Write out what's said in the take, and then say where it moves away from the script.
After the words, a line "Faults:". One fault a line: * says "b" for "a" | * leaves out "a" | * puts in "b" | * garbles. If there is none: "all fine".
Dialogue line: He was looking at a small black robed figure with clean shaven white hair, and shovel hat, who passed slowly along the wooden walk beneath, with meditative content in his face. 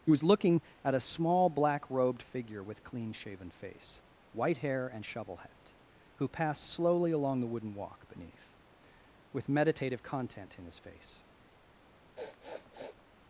He was looking at a small black robed figure with clean shaven face, white hair, and shovel hat, who passed slowly along the wooden walk beneath, with meditative content in his face.
Faults:
* puts in "face"